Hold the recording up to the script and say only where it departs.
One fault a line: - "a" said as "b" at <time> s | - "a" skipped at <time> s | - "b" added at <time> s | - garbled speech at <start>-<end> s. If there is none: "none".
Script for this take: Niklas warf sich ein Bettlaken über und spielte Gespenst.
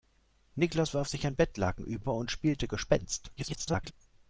- garbled speech at 3.4-3.9 s